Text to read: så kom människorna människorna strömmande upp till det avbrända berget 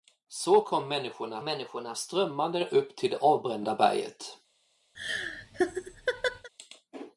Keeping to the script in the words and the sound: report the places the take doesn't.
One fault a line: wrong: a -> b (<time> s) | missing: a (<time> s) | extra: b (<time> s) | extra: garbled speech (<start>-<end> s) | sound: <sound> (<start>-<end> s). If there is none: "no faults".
sound: laugh (4.9-6.5 s)